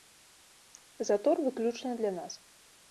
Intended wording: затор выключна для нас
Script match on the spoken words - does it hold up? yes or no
yes